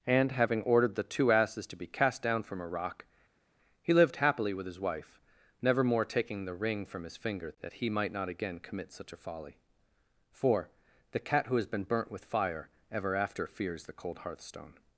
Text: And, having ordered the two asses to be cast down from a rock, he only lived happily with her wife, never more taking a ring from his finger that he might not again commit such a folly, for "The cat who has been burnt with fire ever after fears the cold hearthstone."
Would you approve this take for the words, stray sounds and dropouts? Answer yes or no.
no